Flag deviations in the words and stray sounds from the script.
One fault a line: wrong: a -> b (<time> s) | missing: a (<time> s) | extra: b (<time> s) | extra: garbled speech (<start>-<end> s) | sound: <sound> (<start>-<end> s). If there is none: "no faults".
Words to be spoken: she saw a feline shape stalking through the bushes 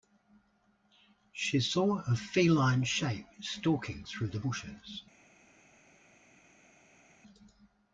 no faults